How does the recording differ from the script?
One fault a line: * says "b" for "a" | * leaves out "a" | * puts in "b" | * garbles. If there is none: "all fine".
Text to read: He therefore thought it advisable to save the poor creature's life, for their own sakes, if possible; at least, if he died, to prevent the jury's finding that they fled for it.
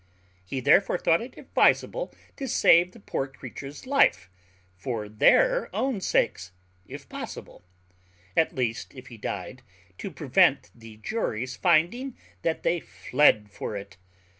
all fine